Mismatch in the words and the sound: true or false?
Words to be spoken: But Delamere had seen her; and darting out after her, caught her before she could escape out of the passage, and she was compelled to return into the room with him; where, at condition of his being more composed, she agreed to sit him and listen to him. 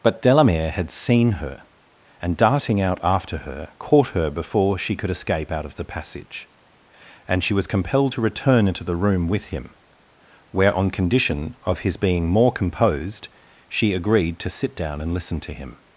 true